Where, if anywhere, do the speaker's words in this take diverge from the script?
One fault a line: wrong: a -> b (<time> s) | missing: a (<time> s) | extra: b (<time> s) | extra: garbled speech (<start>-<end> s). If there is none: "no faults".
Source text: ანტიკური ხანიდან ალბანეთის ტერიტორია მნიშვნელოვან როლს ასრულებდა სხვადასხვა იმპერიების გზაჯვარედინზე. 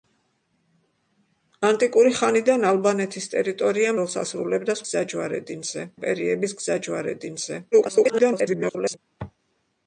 missing: მნიშვნელოვან (3.9 s)
wrong: სხვადასხვა -> გზაჯვარედინზე (4.9 s)
extra: garbled speech (7.7-9.0 s)